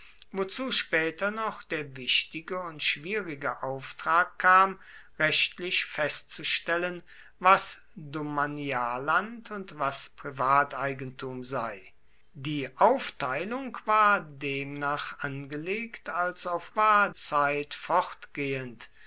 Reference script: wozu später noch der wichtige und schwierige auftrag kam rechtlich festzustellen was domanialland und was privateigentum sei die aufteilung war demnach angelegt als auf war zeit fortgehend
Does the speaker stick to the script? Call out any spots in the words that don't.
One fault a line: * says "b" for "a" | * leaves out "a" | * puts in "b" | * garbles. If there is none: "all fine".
all fine